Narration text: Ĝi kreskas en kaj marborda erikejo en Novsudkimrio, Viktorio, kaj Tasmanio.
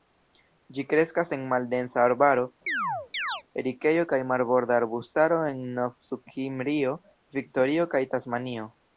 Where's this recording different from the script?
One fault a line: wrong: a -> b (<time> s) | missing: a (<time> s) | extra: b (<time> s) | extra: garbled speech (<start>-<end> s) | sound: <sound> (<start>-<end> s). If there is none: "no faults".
extra: maldensa arbaro erikejo (1.5 s)
sound: chirp (2.7-3.4 s)
wrong: erikejo -> arbustaro (4.8 s)